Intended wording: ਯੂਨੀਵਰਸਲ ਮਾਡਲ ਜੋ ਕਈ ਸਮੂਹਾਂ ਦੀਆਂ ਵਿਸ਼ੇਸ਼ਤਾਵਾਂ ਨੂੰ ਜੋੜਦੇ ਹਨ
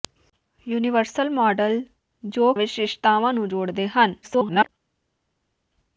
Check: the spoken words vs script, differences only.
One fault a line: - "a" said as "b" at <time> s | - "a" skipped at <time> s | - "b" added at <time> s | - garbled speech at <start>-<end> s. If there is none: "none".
- "ਕਈ ਸਮੂਹਾਂ ਦੀਆਂ" skipped at 2.5 s
- garbled speech at 4.2-4.7 s